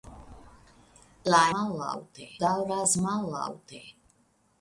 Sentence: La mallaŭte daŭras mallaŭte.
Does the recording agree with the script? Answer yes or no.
yes